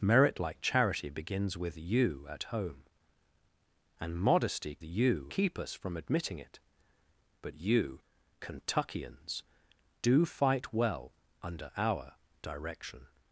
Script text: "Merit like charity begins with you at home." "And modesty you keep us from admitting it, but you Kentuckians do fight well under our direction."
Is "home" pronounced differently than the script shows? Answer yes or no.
no